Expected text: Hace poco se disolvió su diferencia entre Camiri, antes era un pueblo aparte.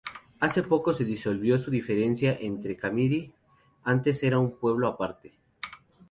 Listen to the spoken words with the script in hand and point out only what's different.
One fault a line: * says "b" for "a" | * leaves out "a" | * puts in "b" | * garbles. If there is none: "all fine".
all fine